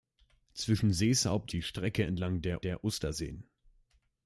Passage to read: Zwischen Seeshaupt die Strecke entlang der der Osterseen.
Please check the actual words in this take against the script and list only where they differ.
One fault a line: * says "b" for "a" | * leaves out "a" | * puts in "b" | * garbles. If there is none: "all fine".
all fine